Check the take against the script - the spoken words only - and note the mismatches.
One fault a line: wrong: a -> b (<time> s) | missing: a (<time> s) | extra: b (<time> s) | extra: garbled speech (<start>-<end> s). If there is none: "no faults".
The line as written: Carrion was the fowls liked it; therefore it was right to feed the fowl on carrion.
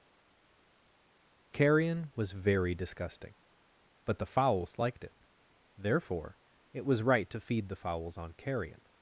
extra: very disgusting but (2.3 s)
wrong: fowl -> fowls (7.8 s)